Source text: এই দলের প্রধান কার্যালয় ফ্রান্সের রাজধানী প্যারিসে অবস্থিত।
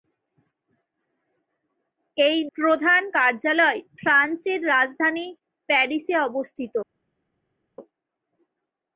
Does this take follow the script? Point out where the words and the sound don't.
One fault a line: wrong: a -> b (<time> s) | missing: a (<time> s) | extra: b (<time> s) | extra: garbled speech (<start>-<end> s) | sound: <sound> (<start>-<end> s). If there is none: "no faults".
missing: দলের (2.4 s)